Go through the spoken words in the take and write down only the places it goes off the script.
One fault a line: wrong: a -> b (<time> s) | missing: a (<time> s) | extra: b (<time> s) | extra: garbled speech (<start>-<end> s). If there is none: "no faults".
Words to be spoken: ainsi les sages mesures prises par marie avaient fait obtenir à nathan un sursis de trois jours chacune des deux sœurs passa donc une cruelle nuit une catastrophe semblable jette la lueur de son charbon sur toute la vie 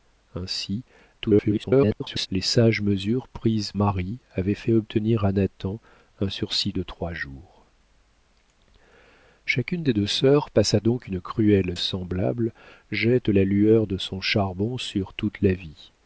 extra: garbled speech (1.2-2.3 s)
missing: par (3.7 s)
missing: nuit une catastrophe (11.7 s)